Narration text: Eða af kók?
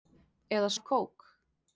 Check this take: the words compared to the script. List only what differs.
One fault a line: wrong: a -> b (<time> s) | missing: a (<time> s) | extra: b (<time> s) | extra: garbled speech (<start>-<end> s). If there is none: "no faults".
no faults